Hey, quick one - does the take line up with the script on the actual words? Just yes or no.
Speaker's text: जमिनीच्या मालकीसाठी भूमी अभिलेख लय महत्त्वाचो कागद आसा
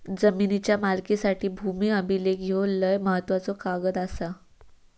no